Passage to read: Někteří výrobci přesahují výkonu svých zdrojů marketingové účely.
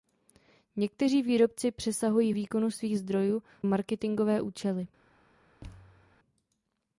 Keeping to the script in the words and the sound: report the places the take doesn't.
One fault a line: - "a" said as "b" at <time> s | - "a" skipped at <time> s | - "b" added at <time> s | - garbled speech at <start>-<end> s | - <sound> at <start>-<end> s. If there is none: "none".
- thud at 5.6-6.2 s